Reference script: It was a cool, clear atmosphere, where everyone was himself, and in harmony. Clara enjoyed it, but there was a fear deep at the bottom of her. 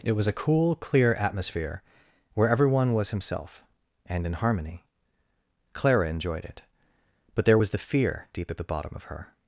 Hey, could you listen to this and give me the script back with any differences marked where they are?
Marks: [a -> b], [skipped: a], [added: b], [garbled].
It was a cool, clear atmosphere, where everyone was himself, and in harmony. Clara enjoyed it, but there was [a -> the] fear deep at the bottom of her.